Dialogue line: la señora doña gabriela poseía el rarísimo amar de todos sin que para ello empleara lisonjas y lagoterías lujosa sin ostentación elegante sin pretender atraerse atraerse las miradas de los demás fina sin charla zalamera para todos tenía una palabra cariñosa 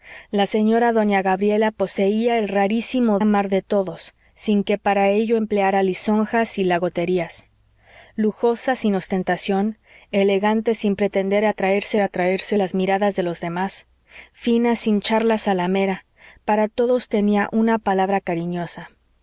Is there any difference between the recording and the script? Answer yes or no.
no